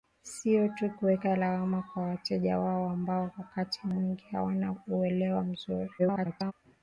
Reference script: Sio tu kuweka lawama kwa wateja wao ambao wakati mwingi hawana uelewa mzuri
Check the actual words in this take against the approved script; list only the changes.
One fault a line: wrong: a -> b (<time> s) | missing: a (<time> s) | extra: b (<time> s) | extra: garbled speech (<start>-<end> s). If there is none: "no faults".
extra: garbled speech (6.0-6.5 s)